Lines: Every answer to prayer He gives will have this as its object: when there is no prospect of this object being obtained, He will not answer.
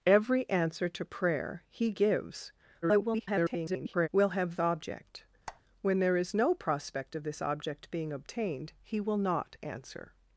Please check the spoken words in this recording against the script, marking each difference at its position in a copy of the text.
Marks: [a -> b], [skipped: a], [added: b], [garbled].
Every answer to prayer He gives [garbled] will have [skipped: this as its] object: when there is no prospect of this object being obtained, He will not answer.